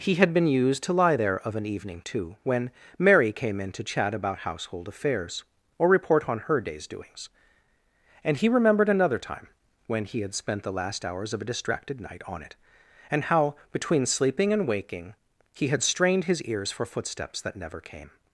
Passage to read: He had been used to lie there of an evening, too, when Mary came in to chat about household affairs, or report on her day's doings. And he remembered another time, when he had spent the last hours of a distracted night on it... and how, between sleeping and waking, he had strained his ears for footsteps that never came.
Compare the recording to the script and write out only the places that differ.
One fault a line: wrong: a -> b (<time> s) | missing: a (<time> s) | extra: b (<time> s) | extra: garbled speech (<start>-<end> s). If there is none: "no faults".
no faults